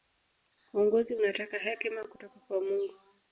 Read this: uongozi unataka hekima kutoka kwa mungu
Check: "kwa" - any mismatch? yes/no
no